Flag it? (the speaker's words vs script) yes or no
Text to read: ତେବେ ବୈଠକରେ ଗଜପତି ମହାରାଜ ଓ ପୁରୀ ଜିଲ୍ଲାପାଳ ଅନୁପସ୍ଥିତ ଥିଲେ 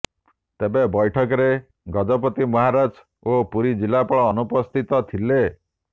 no